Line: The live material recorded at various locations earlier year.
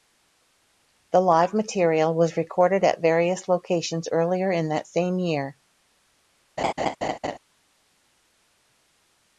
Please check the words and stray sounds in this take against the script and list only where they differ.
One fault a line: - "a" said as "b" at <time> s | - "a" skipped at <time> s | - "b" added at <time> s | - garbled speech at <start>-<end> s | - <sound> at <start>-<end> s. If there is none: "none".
- "was" added at 2.1 s
- "in that same" added at 4.5 s
- laugh at 6.6-7.4 s